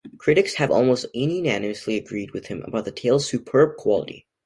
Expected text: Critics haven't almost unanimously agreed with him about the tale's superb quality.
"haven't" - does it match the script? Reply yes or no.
no